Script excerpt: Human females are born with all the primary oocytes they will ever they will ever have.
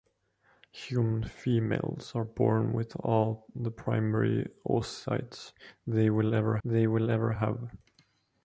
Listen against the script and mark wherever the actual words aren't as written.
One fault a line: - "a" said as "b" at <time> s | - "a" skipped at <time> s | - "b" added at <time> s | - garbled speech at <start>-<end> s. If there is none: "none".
none